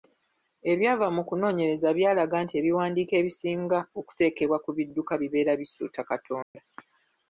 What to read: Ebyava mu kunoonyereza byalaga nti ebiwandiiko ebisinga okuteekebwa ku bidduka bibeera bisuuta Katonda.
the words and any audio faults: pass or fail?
fail